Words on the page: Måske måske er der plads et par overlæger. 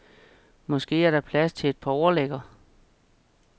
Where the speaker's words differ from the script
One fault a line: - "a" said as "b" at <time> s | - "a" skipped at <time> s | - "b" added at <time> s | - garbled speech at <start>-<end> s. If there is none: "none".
- "måske" skipped at 1.1 s
- "til" added at 1.5 s